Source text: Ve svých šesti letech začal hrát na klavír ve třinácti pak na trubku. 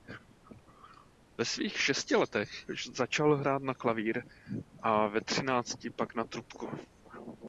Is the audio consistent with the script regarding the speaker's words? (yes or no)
no